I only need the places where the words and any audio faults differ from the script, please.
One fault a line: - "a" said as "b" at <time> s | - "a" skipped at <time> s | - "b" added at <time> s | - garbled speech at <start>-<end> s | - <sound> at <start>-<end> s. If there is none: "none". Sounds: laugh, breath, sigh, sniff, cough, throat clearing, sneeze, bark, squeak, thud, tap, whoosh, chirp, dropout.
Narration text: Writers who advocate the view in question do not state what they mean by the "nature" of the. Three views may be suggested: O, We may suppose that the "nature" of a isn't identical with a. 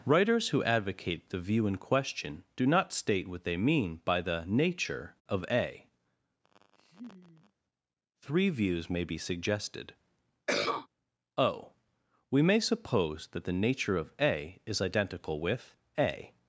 - "the" said as "a" at 5.5 s
- laugh at 6.4-7.5 s
- cough at 10.5-10.9 s
- "isn't" said as "is" at 14.6 s